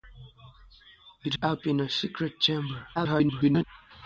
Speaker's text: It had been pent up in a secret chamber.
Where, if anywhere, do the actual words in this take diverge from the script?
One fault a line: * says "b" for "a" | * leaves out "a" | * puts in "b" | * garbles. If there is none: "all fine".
* leaves out "had been pent"
* garbles